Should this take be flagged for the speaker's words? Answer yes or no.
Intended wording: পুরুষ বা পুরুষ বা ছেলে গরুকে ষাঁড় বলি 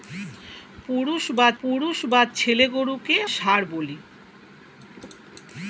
no